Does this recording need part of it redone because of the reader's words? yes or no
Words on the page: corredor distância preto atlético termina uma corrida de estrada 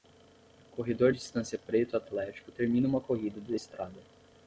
no